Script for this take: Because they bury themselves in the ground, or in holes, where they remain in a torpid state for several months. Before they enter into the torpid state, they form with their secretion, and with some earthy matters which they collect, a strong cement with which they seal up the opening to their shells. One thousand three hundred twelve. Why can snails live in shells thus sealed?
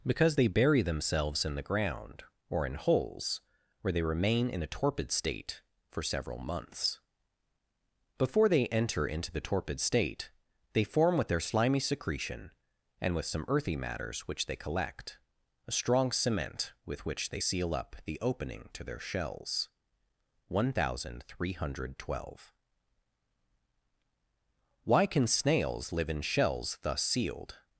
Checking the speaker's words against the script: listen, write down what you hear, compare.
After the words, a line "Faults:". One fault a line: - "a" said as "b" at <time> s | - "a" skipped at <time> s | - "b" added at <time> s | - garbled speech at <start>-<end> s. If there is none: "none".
Because they bury themselves in the ground, or in holes, where they remain in a torpid state for several months. Before they enter into the torpid state, they form with their slimy secretion, and with some earthy matters which they collect, a strong cement with which they seal up the opening to their shells. One thousand three hundred twelve. Why can snails live in shells thus sealed?
Faults:
- "slimy" added at 11.4 s